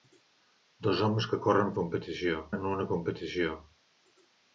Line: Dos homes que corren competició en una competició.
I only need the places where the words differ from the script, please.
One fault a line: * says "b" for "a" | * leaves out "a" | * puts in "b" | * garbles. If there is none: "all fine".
all fine